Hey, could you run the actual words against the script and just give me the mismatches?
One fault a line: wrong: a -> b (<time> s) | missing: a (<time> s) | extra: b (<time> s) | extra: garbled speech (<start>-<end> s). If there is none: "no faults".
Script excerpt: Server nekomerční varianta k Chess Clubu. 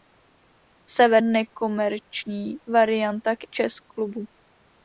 no faults